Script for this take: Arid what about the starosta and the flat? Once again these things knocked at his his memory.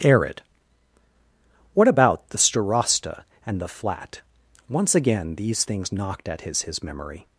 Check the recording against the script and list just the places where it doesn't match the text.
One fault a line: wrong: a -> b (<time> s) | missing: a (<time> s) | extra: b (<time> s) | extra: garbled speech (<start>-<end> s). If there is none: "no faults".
no faults